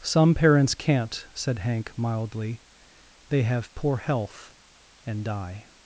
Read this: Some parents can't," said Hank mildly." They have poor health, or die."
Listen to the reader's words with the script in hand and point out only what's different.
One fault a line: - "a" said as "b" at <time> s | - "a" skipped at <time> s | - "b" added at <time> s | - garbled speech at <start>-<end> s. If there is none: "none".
- "or" said as "and" at 5.0 s